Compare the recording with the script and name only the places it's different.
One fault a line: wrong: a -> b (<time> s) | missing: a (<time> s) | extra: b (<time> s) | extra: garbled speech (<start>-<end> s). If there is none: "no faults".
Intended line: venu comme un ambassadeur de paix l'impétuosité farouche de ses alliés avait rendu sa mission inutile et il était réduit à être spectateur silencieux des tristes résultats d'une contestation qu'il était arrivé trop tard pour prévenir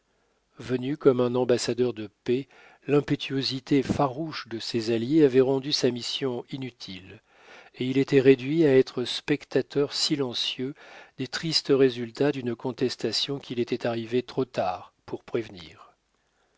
no faults